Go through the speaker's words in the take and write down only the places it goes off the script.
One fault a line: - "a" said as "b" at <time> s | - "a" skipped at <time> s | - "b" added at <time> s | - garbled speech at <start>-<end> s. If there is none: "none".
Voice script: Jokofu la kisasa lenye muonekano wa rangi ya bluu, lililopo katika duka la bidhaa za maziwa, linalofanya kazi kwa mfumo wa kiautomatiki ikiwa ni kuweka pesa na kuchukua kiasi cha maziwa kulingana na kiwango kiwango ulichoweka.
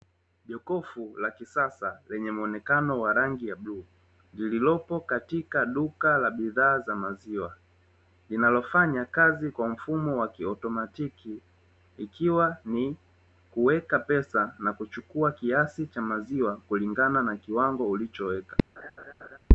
- "kiwango" skipped at 17.9 s